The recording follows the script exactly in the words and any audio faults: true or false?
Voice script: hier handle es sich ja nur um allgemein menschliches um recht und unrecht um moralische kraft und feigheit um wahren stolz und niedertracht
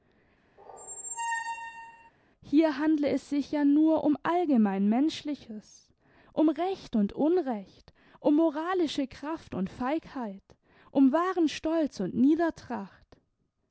false